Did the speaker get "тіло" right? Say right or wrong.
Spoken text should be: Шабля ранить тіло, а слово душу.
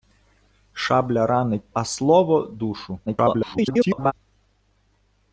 wrong